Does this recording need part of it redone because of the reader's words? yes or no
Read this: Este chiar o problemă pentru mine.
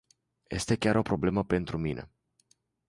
no